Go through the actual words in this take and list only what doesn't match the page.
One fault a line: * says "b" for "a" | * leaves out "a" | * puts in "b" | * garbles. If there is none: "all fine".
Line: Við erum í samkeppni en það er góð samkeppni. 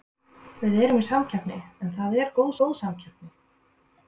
* puts in "góð"